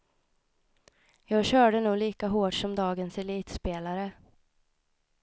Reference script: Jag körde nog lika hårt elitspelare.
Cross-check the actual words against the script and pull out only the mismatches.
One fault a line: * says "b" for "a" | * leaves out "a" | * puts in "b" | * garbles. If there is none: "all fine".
* puts in "som dagens"